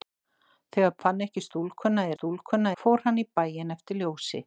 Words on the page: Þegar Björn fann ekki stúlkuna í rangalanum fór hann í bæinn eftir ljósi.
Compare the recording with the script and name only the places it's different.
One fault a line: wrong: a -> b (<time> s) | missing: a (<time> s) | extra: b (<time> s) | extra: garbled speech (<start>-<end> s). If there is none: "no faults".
missing: Björn (0.9 s)
wrong: rangalanum -> stúlkuna (2.1 s)